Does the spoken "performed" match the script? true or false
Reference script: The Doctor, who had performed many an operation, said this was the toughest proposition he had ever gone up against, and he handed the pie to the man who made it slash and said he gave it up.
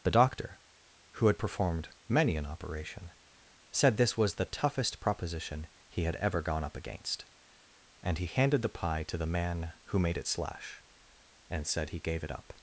true